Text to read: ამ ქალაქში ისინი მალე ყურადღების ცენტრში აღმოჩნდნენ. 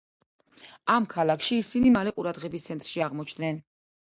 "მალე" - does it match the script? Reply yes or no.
yes